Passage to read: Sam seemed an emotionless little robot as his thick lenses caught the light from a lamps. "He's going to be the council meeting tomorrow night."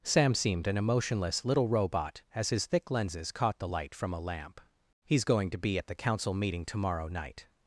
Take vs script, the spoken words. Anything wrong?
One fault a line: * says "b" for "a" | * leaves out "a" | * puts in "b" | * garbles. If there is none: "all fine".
* says "lamp" for "lamps"
* puts in "at"